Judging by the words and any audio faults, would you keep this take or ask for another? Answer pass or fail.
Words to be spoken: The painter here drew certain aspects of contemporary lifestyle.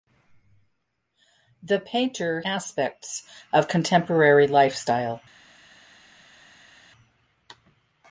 fail